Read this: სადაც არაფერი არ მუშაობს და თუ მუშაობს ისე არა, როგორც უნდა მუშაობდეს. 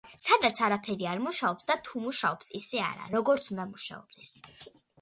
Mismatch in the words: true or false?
false